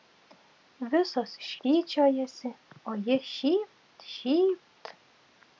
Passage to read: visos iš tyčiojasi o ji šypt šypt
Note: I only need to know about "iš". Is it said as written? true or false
true